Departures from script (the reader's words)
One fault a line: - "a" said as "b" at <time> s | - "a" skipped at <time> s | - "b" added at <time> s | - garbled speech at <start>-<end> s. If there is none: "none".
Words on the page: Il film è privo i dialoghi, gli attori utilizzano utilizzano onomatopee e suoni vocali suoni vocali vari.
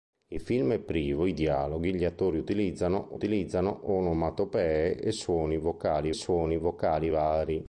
none